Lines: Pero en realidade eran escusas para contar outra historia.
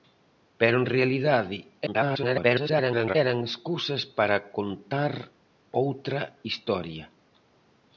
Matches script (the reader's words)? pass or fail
fail